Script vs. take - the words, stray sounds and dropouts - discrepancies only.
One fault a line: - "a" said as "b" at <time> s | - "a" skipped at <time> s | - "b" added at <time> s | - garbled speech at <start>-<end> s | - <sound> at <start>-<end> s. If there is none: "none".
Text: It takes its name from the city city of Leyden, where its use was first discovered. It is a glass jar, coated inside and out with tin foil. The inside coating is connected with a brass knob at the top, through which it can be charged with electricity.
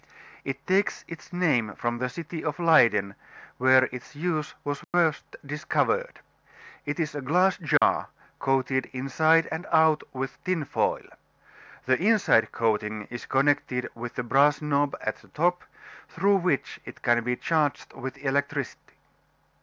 - "city" skipped at 2.4 s
- dropout at 4.8-4.9 s
- dropout at 7.8-7.8 s